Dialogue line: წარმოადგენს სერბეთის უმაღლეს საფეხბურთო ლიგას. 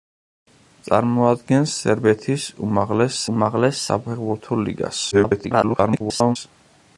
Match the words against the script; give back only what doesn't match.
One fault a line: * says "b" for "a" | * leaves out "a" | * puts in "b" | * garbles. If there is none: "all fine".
* puts in "უმაღლეს"
* garbles